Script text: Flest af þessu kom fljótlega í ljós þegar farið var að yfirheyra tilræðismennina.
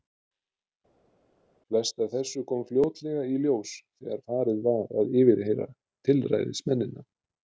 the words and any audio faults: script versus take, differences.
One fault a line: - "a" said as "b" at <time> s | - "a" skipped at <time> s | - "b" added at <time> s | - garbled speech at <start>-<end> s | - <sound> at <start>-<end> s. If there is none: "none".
none